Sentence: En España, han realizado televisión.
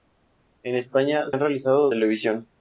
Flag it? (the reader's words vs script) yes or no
no